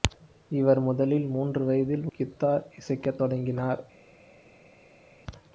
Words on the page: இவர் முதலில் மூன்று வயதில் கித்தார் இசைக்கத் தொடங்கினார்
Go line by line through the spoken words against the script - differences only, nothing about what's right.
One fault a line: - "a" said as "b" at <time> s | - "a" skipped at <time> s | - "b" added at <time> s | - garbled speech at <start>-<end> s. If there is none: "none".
none